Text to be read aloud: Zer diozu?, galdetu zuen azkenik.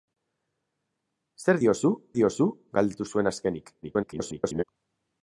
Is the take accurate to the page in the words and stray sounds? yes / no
no